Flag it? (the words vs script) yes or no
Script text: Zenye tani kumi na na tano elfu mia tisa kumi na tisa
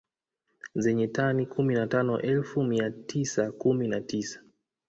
yes